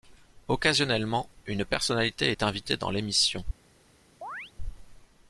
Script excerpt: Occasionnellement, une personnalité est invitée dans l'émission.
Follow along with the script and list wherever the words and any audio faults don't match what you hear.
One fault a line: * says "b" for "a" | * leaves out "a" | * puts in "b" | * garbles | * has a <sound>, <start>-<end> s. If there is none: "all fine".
* has a chirp, 4.2-4.5 s